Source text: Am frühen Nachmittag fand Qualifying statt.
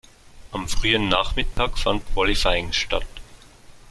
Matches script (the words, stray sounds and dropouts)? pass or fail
fail